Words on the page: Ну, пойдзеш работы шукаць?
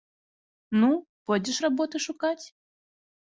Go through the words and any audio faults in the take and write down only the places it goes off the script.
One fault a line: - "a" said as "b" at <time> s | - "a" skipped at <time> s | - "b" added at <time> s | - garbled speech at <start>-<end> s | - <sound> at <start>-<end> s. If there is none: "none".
none